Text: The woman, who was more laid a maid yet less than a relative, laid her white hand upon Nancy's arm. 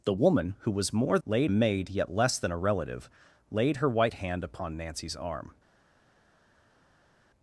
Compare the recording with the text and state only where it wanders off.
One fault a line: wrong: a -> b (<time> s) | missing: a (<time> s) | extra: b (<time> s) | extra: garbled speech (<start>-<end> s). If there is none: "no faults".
no faults